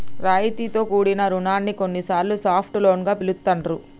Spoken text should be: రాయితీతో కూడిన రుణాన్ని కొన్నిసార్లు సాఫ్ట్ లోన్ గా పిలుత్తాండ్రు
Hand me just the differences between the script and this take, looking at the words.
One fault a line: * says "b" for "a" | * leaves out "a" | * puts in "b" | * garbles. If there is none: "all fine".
all fine